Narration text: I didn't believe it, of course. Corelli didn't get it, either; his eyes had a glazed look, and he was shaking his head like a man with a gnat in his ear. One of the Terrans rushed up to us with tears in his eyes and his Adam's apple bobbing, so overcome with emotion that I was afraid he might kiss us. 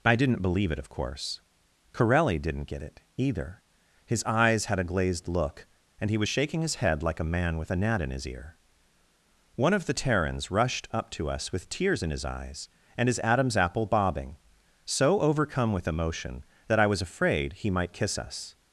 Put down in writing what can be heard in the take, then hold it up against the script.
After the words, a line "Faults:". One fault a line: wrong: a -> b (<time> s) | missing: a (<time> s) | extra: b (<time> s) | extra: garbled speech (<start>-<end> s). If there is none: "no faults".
I didn't believe it, of course. Corelli didn't get it, either; his eyes had a glazed look, and he was shaking his head like a man with a gnat in his ear. One of the Terrans rushed up to us with tears in his eyes and his Adam's apple bobbing, so overcome with emotion that I was afraid he might kiss us.
Faults:
no faults